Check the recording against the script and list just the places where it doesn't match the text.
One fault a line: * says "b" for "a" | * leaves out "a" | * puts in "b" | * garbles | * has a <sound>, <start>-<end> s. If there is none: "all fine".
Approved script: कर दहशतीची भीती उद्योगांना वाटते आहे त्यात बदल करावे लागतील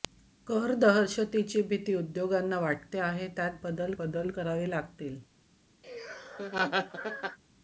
* puts in "बदल"
* has a laugh, 5.8-7.4 s